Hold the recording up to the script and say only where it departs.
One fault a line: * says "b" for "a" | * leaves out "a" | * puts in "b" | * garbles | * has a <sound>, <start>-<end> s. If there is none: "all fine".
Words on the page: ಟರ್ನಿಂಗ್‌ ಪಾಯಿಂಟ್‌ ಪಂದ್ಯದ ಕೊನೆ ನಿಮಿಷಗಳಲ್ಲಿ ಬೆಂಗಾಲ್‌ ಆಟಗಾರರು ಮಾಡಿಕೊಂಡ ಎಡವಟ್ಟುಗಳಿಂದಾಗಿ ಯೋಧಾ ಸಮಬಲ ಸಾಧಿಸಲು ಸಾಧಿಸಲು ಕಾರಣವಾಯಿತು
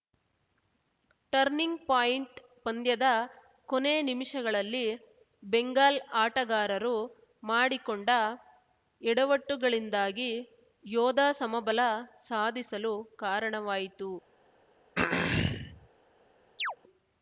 * leaves out "ಸಾಧಿಸಲು"
* has a throat clearing, 15.0-15.9 s
* has a chirp, 16.6-16.8 s